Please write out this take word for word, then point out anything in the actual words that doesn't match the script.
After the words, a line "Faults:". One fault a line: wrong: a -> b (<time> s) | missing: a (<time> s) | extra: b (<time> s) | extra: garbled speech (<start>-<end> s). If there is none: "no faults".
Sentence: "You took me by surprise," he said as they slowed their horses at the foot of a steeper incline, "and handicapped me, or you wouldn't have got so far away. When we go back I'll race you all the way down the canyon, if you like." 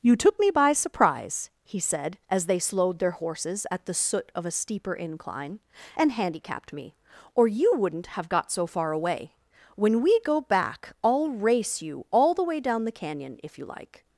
"You took me by surprise," he said as they slowed their horses at the soot of a steeper incline, "and handicapped me, or you wouldn't have got so far away. When we go back I'll race you all the way down the canyon, if you like."
Faults:
wrong: foot -> soot (3.9 s)